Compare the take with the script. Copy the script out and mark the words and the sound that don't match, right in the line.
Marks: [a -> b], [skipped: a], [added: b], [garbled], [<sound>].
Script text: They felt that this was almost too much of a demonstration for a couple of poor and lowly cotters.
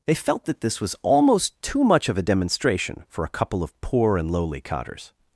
They felt that this was almost too much of a demonstration for a couple of poor and lowly cotters.